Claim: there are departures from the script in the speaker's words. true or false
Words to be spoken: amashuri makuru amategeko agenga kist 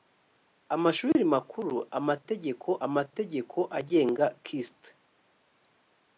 true